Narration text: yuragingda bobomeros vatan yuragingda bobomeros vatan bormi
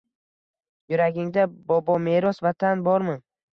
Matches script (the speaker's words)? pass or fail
fail